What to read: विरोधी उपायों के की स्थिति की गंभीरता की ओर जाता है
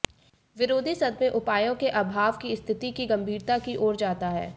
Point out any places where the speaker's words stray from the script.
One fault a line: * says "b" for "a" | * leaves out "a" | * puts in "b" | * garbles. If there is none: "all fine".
* puts in "सदमे"
* puts in "अभाव"